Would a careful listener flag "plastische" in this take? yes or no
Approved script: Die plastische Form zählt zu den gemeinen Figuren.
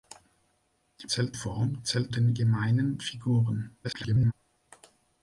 yes